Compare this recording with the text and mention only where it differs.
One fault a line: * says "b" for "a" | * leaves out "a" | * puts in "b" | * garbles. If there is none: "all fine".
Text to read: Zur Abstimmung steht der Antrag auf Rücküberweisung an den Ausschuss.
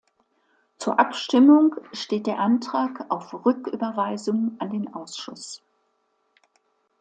all fine